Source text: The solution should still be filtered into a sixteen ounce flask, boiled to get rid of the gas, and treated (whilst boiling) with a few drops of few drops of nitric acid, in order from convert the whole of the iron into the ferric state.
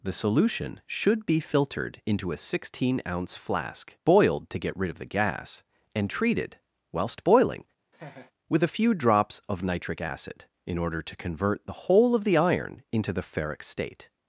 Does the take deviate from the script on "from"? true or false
true